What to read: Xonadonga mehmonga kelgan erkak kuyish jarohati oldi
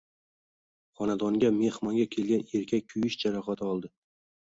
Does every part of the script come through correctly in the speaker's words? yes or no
yes